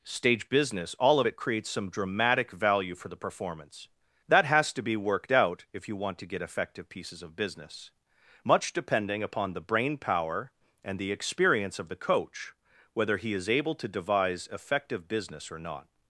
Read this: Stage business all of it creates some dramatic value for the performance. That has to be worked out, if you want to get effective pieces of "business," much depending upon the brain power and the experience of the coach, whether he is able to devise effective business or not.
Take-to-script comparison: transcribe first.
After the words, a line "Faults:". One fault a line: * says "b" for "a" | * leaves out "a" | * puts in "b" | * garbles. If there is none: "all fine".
Stage business all of it creates some dramatic value for the performance. That has to be worked out, if you want to get effective pieces of "business," much depending upon the brain power and the experience of the coach, whether he is able to devise effective business or not.
Faults:
all fine